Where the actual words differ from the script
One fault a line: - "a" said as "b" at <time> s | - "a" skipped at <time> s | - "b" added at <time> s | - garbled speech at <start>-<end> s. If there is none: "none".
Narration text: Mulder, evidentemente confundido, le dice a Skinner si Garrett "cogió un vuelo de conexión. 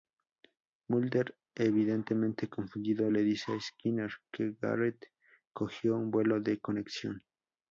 - "si" said as "que" at 4.3 s